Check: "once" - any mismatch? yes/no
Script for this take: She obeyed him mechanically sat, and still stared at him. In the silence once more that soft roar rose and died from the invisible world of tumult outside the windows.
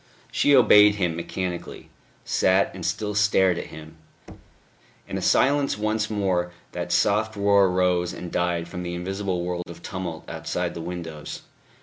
no